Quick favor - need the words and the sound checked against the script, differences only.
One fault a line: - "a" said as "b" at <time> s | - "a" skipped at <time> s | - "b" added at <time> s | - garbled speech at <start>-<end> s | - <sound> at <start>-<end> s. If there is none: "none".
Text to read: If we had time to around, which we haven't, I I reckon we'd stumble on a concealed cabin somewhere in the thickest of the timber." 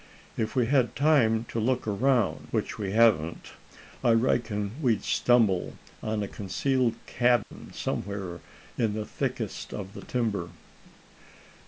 - "look" added at 1.6 s
- "I" skipped at 4.1 s
- dropout at 7.4-7.5 s